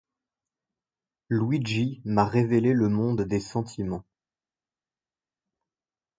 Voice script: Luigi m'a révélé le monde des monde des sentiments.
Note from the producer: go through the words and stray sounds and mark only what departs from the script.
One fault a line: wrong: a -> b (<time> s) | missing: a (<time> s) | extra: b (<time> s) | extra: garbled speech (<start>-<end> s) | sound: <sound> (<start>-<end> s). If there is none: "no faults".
missing: monde des (3.4 s)